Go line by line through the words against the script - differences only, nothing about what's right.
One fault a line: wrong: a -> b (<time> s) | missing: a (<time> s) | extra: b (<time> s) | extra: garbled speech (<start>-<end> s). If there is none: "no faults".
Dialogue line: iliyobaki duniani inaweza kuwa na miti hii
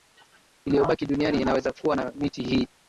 no faults